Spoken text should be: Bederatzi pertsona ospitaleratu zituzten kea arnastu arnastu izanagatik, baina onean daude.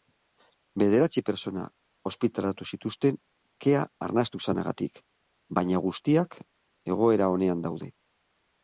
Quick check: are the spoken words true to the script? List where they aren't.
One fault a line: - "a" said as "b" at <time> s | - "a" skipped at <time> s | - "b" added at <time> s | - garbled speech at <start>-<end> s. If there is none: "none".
- "arnastu" skipped at 4.4 s
- "guztiak egoera" added at 5.9 s